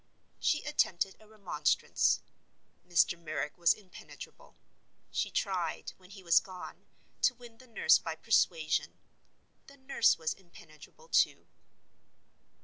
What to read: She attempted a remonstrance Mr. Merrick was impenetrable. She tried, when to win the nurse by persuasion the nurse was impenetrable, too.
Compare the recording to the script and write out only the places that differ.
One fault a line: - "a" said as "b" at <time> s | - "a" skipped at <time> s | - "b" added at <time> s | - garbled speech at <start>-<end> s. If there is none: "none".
- "he was gone" added at 6.1 s